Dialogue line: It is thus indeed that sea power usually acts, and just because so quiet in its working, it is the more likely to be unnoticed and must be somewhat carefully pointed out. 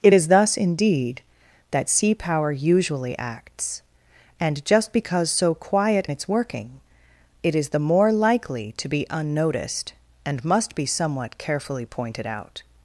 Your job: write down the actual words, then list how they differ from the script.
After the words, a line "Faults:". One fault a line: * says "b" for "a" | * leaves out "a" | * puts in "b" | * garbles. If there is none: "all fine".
It is thus indeed that sea power usually acts, and just because so quiet its working, it is the more likely to be unnoticed and must be somewhat carefully pointed out.
Faults:
* leaves out "in"